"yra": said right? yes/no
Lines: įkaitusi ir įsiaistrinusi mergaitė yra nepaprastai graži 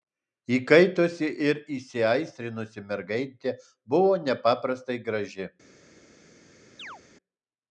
no